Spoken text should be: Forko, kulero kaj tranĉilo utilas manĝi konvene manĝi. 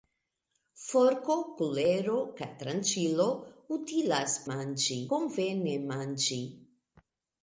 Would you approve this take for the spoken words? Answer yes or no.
yes